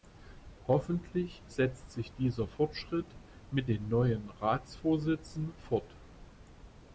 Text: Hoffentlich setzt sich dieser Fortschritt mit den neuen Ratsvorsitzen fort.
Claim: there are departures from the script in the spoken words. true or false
false